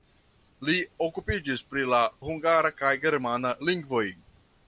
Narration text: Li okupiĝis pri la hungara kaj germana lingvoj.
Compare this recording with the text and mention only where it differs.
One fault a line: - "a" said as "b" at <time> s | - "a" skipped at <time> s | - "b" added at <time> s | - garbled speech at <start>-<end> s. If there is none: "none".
none